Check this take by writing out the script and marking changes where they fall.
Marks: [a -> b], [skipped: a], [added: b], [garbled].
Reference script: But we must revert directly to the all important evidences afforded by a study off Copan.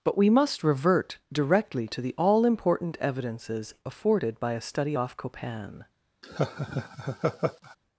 But we must revert directly to the all important evidences afforded by a study off Copan.